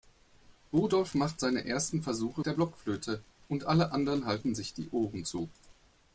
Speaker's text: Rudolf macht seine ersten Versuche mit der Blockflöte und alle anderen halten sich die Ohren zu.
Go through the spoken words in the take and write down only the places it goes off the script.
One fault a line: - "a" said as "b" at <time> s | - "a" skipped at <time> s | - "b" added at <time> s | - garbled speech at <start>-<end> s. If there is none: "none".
- "mit" skipped at 2.4 s